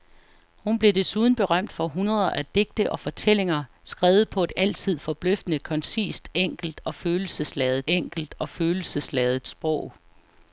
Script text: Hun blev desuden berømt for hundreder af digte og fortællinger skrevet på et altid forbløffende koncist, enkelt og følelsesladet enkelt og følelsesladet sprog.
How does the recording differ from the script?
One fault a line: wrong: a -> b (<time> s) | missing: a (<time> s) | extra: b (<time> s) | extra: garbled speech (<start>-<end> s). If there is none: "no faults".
no faults